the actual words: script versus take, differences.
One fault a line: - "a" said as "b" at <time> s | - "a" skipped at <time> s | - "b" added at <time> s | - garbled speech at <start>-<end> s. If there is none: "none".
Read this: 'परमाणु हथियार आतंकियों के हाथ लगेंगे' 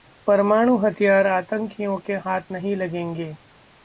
- "नहीं" added at 2.5 s